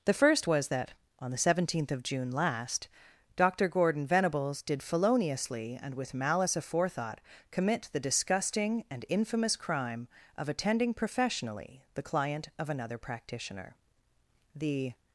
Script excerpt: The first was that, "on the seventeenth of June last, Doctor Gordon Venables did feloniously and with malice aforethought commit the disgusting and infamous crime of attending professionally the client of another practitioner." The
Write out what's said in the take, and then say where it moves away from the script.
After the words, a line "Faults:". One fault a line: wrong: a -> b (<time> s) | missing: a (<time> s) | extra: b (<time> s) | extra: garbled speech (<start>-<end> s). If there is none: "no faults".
The first was that, "on the seventeenth of June last, Doctor Gordon Venables did feloniously and with malice aforethought commit the disgusting and infamous crime of attending professionally the client of another practitioner." The
Faults:
no faults